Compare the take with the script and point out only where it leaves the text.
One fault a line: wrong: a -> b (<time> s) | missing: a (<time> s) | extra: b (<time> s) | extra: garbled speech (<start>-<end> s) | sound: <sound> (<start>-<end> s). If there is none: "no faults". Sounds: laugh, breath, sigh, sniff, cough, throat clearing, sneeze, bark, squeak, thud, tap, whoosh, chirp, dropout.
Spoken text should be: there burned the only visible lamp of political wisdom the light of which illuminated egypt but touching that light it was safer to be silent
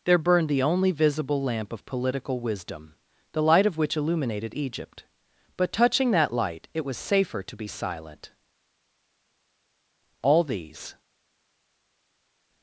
extra: all these (10.2 s)